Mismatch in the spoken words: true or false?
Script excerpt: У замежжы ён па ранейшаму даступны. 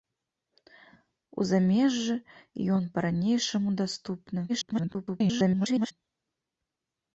true